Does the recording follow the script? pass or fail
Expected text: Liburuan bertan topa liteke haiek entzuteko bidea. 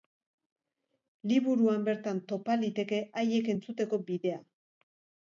pass